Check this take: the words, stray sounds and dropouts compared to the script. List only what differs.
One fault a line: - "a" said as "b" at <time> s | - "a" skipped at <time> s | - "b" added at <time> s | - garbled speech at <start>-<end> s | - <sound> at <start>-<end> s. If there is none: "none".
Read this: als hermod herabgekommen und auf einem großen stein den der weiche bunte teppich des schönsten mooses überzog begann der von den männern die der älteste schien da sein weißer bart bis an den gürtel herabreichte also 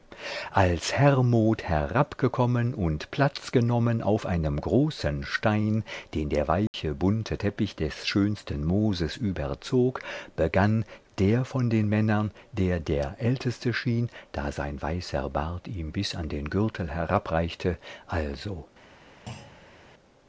- "platz genommen" added at 3.1 s
- dropout at 6.7-6.7 s
- "die" said as "der" at 12.5 s
- "ihm" added at 15.7 s
- thud at 19.3-19.8 s